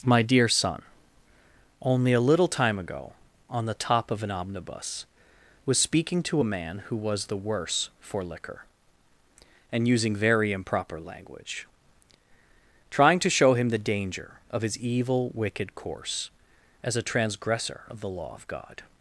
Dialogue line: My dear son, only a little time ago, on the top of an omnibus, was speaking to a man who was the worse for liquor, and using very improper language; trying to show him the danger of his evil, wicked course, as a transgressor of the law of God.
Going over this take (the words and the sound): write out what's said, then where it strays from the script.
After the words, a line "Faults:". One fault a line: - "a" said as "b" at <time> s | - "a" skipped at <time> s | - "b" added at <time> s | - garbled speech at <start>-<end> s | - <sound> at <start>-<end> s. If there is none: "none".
My dear son, only a little time ago, on the top of an omnibus, was speaking to a man who was the worse for liquor, and using very improper language; trying to show him the danger of his evil, wicked course, as a transgressor of the law of God.
Faults:
none